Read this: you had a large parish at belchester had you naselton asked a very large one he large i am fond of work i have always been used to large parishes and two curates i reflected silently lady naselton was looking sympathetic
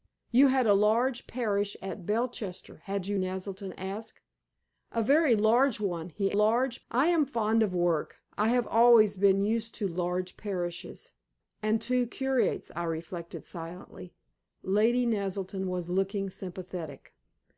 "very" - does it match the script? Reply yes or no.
yes